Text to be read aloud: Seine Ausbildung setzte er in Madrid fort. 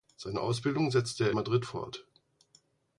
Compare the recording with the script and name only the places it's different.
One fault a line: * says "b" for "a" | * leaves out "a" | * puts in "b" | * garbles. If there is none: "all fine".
* leaves out "in"